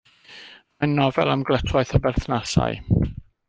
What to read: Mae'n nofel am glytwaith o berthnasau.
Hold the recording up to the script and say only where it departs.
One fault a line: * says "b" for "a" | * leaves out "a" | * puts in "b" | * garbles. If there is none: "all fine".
all fine